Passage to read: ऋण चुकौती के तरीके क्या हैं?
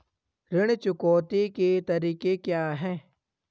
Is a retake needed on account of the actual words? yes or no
no